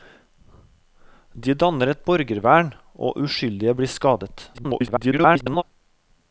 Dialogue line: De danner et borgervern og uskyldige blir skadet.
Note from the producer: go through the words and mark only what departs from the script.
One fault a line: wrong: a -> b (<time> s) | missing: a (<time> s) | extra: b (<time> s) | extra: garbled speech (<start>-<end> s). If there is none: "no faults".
extra: garbled speech (4.5-5.6 s)